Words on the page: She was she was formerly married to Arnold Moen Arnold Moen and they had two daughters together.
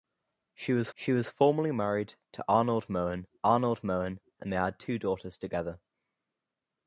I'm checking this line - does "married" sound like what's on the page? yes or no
yes